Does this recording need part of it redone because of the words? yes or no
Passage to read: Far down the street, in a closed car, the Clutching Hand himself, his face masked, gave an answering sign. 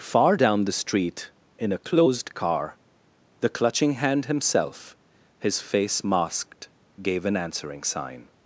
no